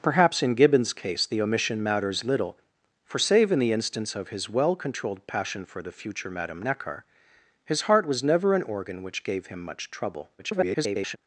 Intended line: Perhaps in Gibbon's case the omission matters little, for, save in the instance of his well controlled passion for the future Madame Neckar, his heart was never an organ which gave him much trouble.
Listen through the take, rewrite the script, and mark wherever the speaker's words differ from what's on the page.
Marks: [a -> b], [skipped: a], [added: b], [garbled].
Perhaps in Gibbon's case the omission matters little, for, save in the instance of his well controlled passion for the future Madame Neckar, his heart was never an organ which gave him much trouble. [garbled]